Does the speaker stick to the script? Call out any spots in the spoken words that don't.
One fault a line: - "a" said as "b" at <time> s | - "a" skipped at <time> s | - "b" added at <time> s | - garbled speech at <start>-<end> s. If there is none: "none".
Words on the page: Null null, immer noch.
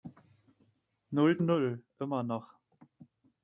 none